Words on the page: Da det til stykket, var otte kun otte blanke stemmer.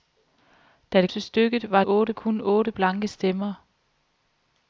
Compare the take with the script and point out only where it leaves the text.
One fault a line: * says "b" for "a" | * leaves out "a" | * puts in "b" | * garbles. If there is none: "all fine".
all fine